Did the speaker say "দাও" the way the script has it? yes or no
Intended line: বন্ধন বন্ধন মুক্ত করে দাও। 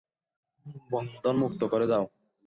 yes